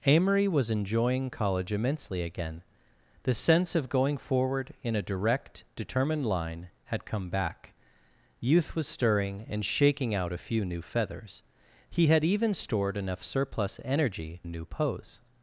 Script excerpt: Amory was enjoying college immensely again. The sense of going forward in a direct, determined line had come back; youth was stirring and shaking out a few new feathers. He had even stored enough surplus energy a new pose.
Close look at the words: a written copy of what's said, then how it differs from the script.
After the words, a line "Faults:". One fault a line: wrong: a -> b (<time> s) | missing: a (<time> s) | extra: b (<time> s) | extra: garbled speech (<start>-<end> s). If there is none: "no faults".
Amory was enjoying college immensely again. The sense of going forward in a direct, determined line had come back; youth was stirring and shaking out a few new feathers. He had even stored enough surplus energy a new pose.
Faults:
no faults